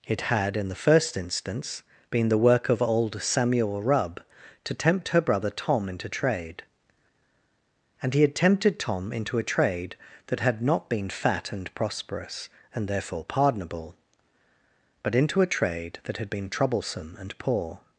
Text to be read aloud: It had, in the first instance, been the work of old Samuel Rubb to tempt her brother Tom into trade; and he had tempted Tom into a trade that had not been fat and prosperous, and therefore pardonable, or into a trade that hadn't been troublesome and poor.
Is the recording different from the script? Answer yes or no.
yes